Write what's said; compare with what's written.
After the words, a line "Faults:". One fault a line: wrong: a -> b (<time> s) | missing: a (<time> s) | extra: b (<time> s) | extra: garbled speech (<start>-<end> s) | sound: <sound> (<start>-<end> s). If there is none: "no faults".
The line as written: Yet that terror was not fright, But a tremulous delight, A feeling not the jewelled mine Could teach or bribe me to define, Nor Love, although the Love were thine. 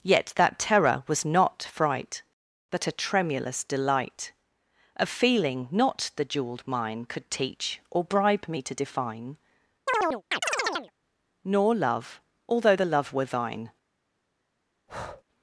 Yet that terror was not fright, But a tremulous delight, A feeling not the jewelled mine Could teach or bribe me to define, Nor Love, although the Love were thine.
Faults:
sound: chirp (9.9-10.9 s)
sound: breath (14.9-15.2 s)